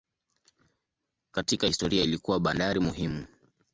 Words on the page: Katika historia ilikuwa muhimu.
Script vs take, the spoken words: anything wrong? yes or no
yes